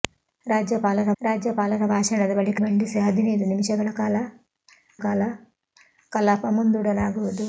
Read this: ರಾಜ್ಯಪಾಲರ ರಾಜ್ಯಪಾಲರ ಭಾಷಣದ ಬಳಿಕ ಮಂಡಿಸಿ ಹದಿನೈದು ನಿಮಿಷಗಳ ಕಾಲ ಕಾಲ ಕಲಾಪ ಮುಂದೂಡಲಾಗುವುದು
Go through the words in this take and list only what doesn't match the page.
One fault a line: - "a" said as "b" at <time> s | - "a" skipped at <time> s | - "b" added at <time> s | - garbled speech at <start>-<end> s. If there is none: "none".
none